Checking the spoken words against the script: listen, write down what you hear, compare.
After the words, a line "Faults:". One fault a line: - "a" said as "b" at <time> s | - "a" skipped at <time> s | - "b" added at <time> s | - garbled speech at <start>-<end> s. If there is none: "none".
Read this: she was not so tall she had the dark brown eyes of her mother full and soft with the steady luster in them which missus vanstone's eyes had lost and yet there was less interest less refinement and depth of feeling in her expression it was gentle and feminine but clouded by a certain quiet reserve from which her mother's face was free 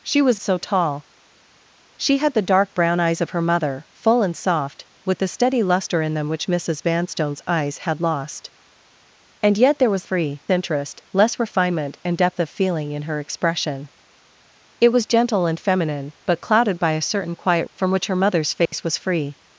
she was so tall she had the dark brown eyes of her mother full and soft with the steady luster in them which missus vanstone's eyes had lost and yet there was free interest less refinement and depth of feeling in her expression it was gentle and feminine but clouded by a certain quiet from which her mother's face was free
Faults:
- "not" skipped at 0.4 s
- "less" said as "free" at 10.0 s
- "reserve" skipped at 17.7 s